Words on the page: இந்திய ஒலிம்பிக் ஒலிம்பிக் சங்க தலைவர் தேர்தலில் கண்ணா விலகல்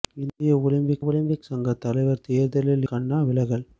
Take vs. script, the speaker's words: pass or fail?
pass